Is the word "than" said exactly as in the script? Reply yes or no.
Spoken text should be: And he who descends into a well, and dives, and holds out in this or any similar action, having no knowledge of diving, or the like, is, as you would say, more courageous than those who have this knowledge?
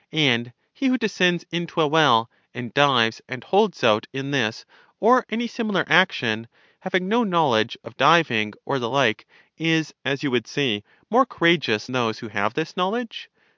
no